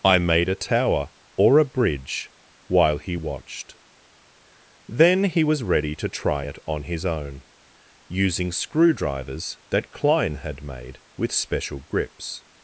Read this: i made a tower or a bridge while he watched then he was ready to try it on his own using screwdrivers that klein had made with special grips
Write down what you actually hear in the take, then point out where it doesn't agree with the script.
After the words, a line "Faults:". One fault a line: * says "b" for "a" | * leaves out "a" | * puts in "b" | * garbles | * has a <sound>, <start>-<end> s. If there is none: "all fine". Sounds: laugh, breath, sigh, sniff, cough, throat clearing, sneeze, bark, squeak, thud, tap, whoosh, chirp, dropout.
i made a tower or a bridge while he watched then he was ready to try it on his own using screwdrivers that klein had made with special grips
Faults:
all fine